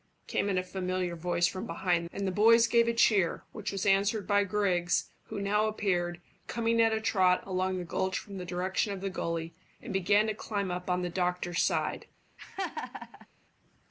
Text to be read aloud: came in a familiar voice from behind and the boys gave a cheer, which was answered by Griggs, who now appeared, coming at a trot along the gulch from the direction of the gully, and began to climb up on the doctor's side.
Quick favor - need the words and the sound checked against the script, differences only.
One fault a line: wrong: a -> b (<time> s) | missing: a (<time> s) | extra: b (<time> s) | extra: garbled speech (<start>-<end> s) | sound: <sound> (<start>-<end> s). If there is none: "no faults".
sound: laugh (12.4-13.3 s)